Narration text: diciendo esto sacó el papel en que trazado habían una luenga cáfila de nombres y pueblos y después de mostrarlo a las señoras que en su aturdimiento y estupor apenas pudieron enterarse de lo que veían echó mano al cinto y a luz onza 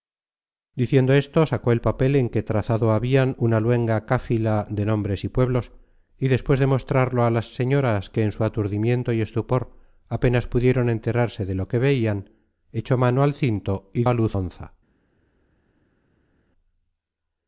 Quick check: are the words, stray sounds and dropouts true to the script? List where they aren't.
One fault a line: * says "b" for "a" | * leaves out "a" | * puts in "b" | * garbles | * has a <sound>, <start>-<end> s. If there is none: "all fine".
all fine